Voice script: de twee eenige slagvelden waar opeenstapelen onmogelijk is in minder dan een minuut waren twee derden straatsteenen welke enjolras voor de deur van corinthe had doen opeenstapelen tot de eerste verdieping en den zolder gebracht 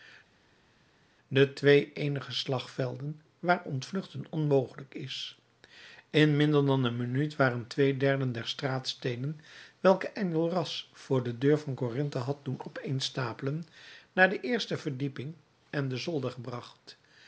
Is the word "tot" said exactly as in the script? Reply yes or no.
no